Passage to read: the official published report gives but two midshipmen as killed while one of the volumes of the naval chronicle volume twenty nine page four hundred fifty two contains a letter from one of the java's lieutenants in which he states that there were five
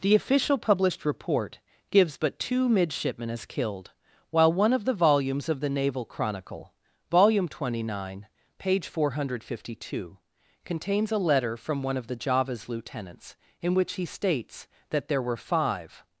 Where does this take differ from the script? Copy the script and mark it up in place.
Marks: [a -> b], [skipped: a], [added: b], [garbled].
the official published report gives but two midshipmen as killed while one of the volumes of the naval chronicle volume twenty nine page four hundred fifty two contains a letter from one of the java's lieutenants in which he states that there were five